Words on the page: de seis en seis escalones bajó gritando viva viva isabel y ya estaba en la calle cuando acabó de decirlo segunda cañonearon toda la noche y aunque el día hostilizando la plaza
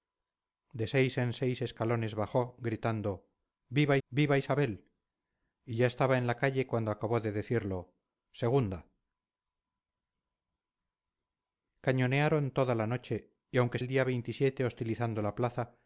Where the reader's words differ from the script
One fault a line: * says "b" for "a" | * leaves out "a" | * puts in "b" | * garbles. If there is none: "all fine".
all fine